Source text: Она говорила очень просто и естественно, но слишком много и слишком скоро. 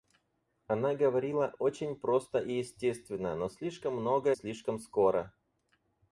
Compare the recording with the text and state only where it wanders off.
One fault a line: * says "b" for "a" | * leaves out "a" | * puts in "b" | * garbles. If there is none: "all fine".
* leaves out "и"